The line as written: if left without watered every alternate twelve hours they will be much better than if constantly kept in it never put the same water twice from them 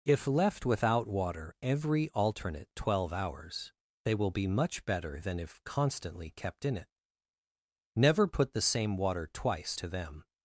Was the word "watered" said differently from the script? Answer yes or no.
yes